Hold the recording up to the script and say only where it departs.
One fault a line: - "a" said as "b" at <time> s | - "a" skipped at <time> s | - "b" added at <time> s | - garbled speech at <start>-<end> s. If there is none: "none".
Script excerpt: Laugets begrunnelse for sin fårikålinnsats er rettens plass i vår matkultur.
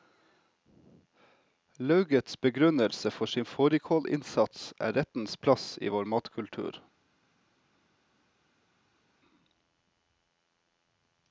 none